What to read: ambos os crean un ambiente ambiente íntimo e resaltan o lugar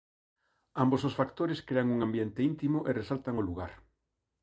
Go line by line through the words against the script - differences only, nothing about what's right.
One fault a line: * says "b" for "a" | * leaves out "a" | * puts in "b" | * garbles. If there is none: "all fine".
* puts in "factores"
* leaves out "ambiente"